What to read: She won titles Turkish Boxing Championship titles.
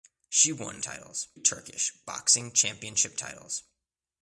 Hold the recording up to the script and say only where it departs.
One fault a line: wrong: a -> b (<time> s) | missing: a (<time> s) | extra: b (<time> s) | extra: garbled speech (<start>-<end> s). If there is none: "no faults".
no faults